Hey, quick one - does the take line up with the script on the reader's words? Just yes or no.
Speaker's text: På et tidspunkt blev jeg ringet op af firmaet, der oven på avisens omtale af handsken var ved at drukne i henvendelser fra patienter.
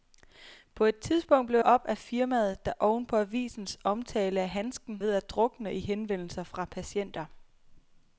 no